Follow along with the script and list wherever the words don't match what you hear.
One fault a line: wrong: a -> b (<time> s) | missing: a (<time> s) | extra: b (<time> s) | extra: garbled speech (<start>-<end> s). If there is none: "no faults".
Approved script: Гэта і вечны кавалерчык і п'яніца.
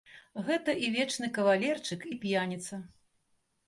no faults